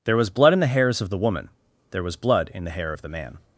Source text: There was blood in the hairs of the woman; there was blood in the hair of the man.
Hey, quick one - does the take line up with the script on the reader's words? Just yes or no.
yes